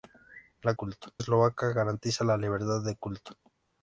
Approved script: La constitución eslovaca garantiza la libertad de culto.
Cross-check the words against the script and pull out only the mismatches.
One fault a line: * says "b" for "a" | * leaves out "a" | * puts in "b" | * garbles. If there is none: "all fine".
* says "culto" for "constitución"